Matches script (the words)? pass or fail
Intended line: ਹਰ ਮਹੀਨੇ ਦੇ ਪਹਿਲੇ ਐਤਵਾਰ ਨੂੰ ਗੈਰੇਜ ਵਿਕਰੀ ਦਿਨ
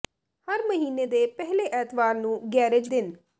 fail